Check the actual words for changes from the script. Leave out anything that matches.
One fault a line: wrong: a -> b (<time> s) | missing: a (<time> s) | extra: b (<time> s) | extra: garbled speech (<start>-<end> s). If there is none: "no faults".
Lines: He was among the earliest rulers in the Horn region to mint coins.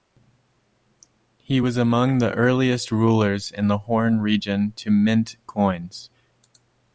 no faults